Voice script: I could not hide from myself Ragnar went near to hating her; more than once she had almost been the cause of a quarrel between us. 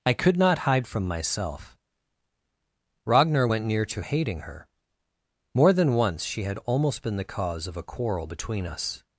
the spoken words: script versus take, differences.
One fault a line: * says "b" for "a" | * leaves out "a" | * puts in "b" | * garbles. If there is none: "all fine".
all fine